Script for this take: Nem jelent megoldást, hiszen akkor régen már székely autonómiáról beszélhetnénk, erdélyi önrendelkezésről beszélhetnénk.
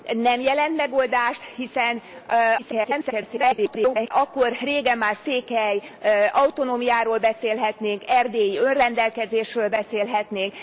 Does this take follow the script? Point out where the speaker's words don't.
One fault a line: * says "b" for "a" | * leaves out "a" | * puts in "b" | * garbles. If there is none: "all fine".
* garbles